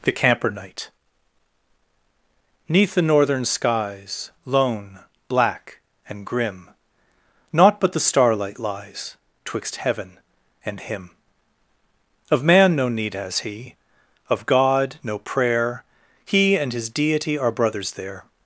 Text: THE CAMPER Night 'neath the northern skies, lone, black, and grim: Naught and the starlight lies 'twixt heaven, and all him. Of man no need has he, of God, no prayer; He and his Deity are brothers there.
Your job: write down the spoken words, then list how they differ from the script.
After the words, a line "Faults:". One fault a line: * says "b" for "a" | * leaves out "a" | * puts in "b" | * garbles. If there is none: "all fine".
THE CAMPER Night 'neath the northern skies, lone, black, and grim: Naught but the starlight lies 'twixt heaven, and him. Of man no need has he, of God, no prayer; He and his Deity are brothers there.
Faults:
* says "but" for "and"
* leaves out "all"